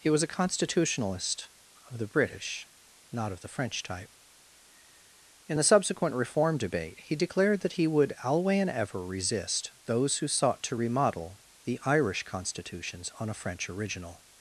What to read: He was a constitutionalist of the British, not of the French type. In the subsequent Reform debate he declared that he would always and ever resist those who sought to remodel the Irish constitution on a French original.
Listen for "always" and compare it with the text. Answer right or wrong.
wrong